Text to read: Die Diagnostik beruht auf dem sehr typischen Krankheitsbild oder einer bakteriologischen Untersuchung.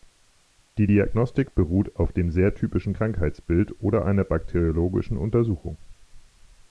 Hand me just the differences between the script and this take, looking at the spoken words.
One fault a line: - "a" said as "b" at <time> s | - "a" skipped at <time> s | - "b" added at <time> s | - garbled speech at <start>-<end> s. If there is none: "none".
none